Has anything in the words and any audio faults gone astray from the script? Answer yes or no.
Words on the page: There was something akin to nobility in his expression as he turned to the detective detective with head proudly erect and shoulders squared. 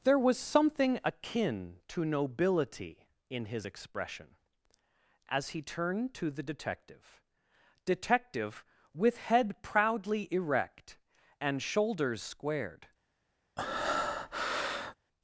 yes